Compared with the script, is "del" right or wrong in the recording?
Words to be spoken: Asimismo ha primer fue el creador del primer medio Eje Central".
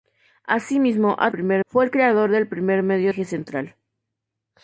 right